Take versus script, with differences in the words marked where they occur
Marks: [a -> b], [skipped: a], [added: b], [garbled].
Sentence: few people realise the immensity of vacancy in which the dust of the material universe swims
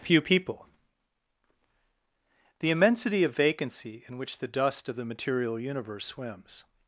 few people [skipped: realise] the immensity of vacancy in which the dust of the material universe swims